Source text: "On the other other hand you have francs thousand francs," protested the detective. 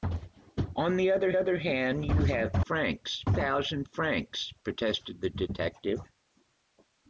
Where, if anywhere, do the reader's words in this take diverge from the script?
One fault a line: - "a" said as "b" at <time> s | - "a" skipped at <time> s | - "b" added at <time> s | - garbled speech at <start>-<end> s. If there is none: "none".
none